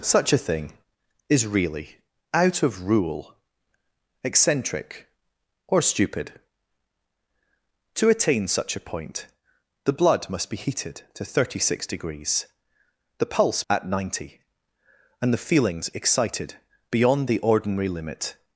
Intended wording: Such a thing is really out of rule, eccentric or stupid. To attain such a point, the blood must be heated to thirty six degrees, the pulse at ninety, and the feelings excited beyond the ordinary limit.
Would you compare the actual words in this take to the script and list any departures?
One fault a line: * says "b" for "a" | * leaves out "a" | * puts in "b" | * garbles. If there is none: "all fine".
all fine